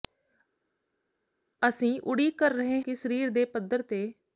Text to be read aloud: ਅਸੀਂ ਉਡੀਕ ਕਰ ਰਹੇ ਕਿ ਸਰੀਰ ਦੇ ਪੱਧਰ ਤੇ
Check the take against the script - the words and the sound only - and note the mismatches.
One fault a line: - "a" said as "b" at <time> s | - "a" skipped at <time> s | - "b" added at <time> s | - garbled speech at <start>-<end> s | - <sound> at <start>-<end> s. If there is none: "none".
none